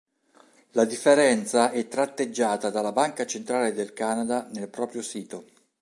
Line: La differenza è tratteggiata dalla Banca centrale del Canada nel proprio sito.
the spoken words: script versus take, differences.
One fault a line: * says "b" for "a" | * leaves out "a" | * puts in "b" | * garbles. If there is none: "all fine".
all fine